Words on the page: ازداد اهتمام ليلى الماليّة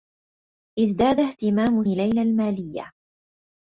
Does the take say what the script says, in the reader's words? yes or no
yes